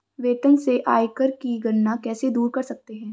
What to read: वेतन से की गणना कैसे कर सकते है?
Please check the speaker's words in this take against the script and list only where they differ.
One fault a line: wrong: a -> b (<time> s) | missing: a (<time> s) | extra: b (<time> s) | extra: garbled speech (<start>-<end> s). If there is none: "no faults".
extra: आयकर (0.9 s)
extra: दूर (2.3 s)